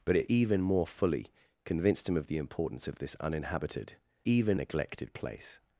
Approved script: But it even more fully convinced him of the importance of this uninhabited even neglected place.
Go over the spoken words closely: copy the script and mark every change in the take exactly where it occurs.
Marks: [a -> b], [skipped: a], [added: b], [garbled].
But it even more fully convinced him of the importance of this uninhabited even neglected place.